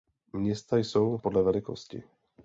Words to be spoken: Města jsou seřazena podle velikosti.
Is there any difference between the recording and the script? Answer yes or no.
yes